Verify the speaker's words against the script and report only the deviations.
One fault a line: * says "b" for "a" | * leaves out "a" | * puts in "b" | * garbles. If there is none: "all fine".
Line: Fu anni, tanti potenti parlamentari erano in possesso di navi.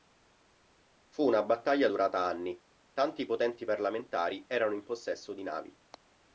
* puts in "una battaglia durata"